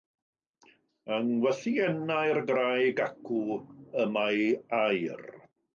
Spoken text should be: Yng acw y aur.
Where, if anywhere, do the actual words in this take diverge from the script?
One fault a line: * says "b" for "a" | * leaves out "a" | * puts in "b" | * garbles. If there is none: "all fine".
* puts in "ngwythiennau'r graig"
* puts in "mae"